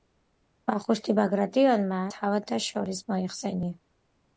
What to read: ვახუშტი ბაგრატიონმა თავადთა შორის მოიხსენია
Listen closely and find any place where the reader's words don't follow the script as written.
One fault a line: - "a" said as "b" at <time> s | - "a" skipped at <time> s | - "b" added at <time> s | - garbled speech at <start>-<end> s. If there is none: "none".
none